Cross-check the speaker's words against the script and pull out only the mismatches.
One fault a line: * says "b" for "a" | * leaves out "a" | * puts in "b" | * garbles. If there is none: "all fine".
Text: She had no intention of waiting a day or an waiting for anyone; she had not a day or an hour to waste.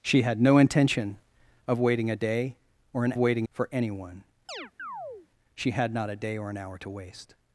all fine